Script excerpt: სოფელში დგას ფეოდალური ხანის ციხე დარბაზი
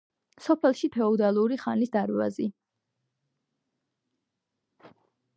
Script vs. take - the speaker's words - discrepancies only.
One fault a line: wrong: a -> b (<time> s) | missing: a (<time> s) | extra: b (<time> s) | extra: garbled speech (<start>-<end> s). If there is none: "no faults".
missing: დგას (0.9 s)
missing: ციხე (1.9 s)